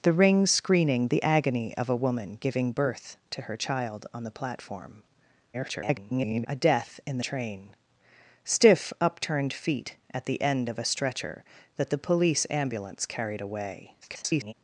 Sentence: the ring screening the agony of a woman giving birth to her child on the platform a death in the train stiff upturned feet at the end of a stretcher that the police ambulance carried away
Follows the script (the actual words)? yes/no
no